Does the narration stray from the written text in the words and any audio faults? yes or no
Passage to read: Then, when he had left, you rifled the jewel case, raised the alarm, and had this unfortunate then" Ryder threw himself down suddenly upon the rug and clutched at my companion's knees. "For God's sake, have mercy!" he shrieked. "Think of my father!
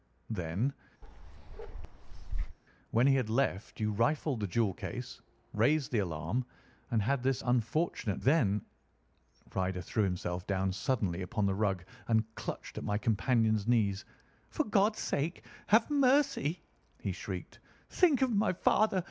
yes